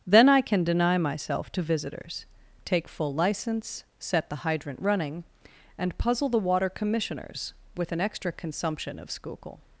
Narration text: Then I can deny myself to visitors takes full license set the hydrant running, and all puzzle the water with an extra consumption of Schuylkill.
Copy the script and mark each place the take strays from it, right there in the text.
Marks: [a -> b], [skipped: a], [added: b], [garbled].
Then I can deny myself to visitors [takes -> take] full license set the hydrant running, and [skipped: all] puzzle the water [added: commissioners] with an extra consumption of Schuylkill.